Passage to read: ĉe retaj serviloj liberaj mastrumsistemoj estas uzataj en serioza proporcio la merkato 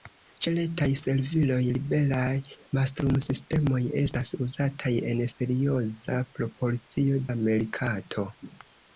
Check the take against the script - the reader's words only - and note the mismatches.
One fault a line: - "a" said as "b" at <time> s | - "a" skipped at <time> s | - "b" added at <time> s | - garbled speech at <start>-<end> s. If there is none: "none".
none